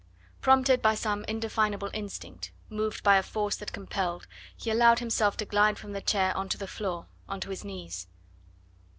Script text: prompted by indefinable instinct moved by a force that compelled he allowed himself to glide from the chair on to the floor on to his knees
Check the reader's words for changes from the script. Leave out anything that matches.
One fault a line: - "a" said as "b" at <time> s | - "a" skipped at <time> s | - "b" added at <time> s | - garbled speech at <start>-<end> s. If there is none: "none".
- "some" added at 0.9 s